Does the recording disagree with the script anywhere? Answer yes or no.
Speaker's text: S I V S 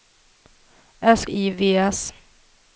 no